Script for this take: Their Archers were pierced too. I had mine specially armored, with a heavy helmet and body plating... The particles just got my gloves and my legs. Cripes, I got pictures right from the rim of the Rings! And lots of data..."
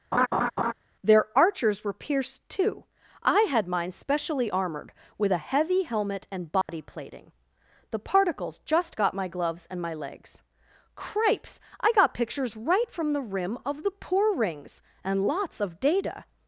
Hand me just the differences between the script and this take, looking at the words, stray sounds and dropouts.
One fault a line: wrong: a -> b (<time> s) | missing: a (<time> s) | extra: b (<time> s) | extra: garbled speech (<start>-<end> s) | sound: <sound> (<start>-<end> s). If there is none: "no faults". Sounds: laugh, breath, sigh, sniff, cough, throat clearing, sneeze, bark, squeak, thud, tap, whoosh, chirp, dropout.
sound: laugh (0.1-0.7 s)
sound: dropout (6.6-6.7 s)
extra: poor (13.9 s)